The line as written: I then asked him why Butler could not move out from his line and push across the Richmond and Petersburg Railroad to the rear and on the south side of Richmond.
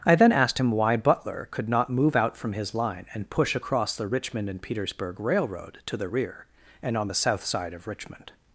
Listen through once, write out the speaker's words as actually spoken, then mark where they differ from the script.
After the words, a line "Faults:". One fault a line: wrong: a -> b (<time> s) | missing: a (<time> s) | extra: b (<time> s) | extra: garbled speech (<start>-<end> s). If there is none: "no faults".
I then asked him why Butler could not move out from his line and push across the Richmond and Petersburg Railroad to the rear and on the south side of Richmond.
Faults:
no faults